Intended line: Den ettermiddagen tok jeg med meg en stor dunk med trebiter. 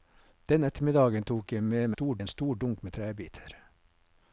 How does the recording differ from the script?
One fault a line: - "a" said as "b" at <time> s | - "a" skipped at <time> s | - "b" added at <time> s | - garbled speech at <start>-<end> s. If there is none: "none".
- "meg" said as "stor" at 1.9 s